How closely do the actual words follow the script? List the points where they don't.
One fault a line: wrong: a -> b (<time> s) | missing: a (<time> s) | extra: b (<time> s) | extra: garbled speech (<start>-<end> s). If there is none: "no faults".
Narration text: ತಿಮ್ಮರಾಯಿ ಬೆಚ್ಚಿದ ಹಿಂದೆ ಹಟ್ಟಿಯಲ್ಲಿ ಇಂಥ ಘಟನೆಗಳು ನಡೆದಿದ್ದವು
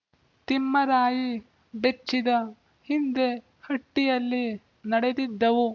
missing: ಇಂಥ ಘಟನೆಗಳು (4.4 s)